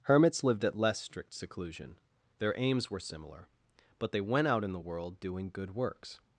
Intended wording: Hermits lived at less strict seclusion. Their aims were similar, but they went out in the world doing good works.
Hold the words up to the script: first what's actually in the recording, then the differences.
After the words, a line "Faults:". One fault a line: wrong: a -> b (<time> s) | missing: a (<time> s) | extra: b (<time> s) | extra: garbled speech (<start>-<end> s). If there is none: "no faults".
Hermits lived at less strict seclusion. Their aims were similar, but they went out in the world doing good works.
Faults:
no faults